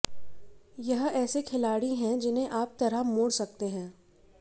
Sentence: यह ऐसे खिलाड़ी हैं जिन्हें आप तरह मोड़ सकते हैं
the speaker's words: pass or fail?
pass